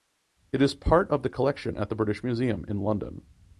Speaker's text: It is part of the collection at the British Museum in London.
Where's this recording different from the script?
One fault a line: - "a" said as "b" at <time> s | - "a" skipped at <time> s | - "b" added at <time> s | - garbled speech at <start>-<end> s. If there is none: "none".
none